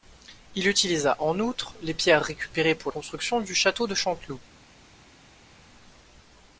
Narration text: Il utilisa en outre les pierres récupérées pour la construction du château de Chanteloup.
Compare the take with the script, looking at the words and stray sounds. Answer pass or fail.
fail